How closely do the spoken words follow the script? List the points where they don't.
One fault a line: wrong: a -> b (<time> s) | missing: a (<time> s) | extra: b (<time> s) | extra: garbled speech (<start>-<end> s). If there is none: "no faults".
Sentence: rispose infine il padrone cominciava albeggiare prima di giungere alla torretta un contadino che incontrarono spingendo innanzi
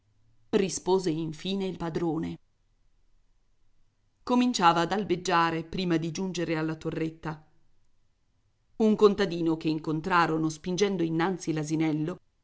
extra: ad (4.8 s)